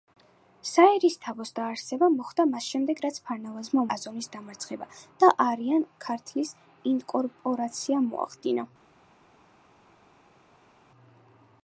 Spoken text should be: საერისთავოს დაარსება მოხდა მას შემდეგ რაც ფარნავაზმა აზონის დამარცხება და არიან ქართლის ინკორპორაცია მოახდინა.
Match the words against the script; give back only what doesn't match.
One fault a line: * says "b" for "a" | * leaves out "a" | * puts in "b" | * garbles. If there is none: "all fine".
all fine